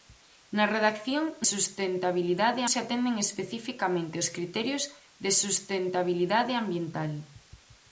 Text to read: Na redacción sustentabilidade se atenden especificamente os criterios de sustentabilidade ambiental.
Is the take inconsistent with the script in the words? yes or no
no